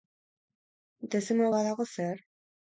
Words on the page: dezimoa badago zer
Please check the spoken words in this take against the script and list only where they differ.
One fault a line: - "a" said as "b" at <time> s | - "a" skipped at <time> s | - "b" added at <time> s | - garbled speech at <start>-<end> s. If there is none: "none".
none